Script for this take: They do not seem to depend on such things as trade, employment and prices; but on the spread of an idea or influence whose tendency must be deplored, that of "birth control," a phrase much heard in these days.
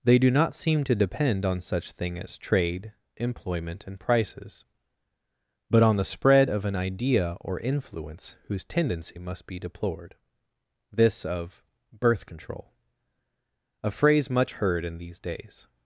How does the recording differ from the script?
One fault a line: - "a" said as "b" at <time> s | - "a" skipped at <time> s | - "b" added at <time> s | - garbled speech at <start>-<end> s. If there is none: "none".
- "things" said as "thing" at 1.9 s
- "that" said as "this" at 10.9 s